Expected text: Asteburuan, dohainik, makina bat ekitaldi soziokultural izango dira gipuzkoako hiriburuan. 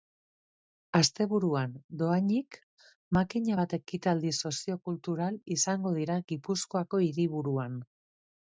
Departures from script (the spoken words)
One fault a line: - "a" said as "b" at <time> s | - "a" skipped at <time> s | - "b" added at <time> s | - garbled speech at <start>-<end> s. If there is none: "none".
none